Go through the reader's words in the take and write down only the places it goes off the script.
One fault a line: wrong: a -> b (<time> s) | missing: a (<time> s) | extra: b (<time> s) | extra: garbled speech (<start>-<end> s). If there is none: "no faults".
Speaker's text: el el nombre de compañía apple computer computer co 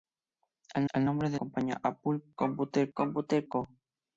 no faults